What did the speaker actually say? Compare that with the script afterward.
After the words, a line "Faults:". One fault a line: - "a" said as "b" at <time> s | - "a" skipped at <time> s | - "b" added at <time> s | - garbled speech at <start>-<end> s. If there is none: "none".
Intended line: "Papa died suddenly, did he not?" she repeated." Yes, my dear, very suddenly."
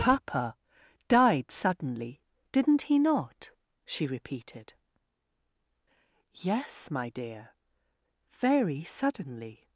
"Papa died suddenly, didn't he not?" she repeated." Yes, my dear, very suddenly."
Faults:
- "did" said as "didn't" at 2.5 s